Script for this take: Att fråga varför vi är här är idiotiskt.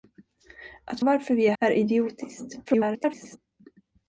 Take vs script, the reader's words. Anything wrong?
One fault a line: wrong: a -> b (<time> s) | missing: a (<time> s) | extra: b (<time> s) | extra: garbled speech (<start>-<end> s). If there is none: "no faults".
missing: fråga (1.0 s)
missing: här (1.5 s)
extra: garbled speech (2.7-3.4 s)